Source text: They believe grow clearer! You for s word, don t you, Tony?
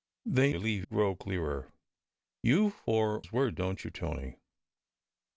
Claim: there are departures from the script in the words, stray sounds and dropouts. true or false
false